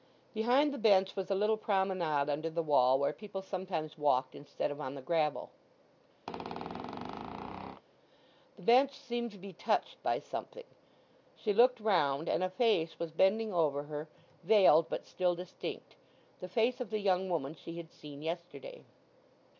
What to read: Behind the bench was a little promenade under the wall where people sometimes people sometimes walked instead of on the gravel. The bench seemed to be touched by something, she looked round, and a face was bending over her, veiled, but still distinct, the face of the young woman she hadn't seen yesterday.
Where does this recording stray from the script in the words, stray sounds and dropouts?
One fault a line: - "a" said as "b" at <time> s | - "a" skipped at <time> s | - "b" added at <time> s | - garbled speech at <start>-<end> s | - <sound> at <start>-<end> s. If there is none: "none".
- "people sometimes" skipped at 4.0 s
- squeak at 6.3-7.8 s
- "hadn't" said as "had" at 17.8 s